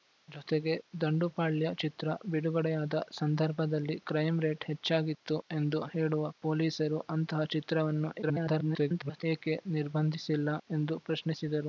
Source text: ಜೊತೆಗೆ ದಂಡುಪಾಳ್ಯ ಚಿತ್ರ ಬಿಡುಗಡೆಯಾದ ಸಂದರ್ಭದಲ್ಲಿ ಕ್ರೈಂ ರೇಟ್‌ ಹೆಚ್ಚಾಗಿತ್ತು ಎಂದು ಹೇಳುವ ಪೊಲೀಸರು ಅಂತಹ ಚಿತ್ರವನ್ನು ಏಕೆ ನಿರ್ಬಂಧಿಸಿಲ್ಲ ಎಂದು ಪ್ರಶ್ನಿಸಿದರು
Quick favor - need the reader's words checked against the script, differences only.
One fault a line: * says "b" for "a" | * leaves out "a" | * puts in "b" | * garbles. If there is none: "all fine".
* garbles